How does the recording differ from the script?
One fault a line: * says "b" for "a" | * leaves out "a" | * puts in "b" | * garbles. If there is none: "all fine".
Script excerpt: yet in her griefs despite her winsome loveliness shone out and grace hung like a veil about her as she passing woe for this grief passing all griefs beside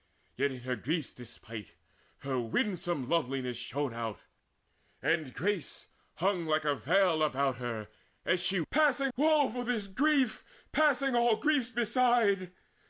all fine